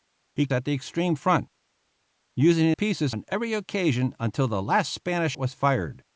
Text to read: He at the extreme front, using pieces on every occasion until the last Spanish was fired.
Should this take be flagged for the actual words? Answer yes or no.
no